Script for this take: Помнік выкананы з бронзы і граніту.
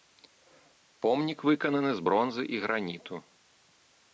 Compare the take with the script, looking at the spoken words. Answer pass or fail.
pass